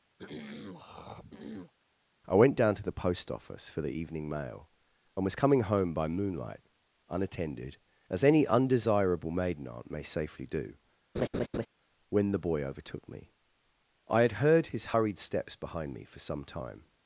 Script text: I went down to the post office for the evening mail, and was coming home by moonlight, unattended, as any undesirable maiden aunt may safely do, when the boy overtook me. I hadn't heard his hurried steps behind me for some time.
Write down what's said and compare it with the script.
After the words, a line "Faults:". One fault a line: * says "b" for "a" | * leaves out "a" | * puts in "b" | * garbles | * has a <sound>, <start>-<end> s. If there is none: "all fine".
I went down to the post office for the evening mail, and was coming home by moonlight, unattended, as any undesirable maiden aunt may safely do, when the boy overtook me. I had heard his hurried steps behind me for some time.
Faults:
* has a throat clearing, 0.2-1.7 s
* has a laugh, 11.1-11.7 s
* says "had" for "hadn't"